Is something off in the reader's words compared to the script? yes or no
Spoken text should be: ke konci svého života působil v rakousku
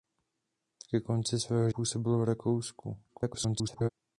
yes